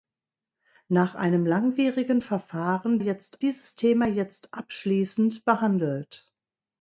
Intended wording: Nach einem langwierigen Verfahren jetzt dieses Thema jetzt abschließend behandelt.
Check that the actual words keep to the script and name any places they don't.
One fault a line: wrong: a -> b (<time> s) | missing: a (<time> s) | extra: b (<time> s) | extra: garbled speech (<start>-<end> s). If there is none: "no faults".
no faults